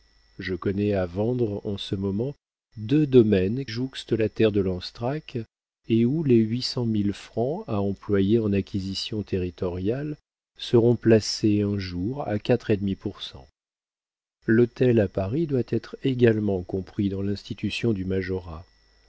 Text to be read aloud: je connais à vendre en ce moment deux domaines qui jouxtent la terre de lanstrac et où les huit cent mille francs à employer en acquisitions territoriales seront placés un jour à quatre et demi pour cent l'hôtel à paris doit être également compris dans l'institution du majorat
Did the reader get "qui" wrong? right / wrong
wrong